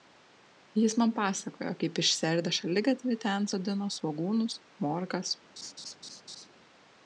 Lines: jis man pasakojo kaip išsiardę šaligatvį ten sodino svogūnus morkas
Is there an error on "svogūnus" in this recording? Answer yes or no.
no